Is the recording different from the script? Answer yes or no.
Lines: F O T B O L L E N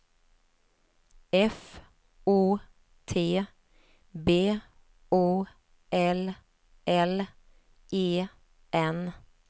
no